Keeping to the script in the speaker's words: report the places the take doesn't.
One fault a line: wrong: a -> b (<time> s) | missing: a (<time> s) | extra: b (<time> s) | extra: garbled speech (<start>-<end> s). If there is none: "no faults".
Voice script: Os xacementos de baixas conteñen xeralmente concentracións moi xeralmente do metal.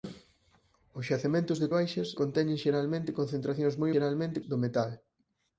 no faults